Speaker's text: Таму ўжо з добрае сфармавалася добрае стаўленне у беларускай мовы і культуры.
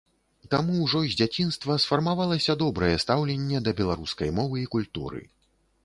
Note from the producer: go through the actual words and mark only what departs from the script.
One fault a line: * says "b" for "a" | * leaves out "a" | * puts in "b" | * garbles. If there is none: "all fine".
* says "дзяцінства" for "добрае"
* says "да" for "у"